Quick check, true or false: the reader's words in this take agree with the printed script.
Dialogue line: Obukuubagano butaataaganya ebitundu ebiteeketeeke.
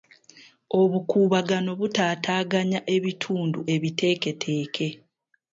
true